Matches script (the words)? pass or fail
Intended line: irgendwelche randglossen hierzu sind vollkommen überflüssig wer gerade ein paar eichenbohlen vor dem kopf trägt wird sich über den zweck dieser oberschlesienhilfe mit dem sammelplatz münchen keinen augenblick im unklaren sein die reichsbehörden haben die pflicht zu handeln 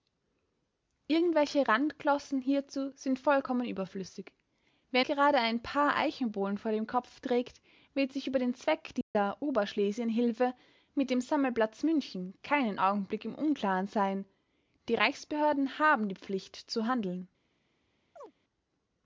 pass